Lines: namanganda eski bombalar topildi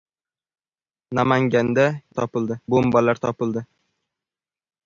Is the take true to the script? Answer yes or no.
no